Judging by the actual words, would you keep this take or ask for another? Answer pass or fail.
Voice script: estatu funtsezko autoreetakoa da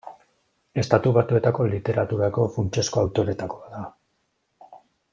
fail